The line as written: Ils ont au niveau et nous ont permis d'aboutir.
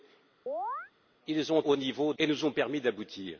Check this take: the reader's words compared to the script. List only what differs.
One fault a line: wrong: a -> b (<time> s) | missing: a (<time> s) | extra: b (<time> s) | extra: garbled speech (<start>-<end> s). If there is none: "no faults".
no faults